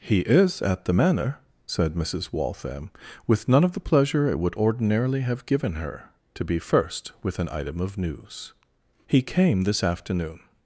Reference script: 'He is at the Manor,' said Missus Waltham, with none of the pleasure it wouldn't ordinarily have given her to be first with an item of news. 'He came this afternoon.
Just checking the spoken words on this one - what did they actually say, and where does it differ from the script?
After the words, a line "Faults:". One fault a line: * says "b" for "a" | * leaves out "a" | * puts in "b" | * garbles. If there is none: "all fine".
'He is at the Manor,' said Missus Waltham, with none of the pleasure it would ordinarily have given her to be first with an item of news. 'He came this afternoon.
Faults:
* says "would" for "wouldn't"